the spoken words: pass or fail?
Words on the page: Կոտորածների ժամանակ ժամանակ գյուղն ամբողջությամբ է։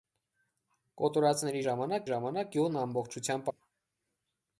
pass